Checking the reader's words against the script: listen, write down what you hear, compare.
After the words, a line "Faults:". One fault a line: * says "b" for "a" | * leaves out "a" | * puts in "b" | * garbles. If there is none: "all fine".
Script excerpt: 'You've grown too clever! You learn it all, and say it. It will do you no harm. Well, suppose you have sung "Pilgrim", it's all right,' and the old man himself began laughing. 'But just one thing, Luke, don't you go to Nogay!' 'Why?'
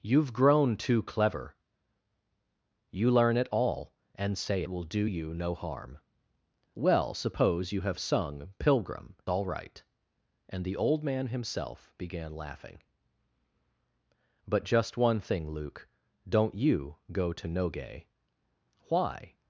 'You've grown too clever! You learn it all, and say will do you no harm. Well, suppose you have sung "Pilgrim", all right,' and the old man himself began laughing. 'But just one thing, Luke, don't you go to Nogay!' 'Why?'
Faults:
* leaves out "it It"
* leaves out "it's"